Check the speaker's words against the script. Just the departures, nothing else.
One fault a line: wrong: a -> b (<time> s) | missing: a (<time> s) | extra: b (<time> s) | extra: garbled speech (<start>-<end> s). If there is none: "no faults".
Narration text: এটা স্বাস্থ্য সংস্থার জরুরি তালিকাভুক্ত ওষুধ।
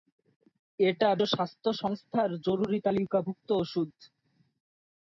no faults